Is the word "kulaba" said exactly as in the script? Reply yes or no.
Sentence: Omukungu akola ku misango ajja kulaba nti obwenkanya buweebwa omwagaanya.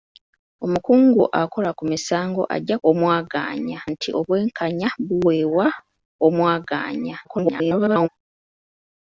no